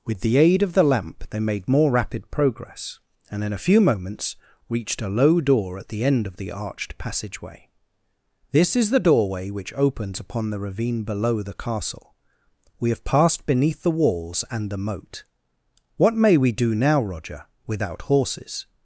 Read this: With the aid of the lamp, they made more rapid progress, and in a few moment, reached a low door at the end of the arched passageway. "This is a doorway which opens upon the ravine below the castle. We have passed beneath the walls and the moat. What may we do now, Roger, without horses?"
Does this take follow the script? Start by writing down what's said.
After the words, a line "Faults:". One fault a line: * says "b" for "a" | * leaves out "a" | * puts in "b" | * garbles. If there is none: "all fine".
With the aid of the lamp, they made more rapid progress, and in a few moments, reached a low door at the end of the arched passageway. "This is the doorway which opens upon the ravine below the castle. We have passed beneath the walls and the moat. What may we do now, Roger, without horses?"
Faults:
* says "moments" for "moment"
* says "the" for "a"